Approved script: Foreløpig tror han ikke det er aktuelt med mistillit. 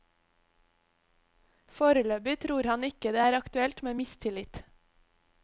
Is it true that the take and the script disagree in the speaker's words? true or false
false